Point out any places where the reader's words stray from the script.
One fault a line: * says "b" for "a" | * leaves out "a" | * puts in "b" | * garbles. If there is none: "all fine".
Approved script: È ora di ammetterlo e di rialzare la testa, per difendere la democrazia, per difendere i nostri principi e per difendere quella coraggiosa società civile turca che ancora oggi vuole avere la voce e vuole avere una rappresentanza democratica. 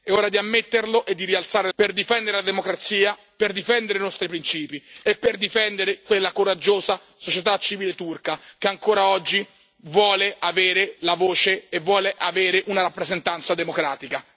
* leaves out "la testa"